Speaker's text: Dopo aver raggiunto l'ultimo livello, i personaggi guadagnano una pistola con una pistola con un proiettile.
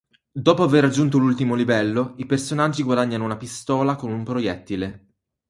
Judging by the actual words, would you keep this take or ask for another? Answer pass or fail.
fail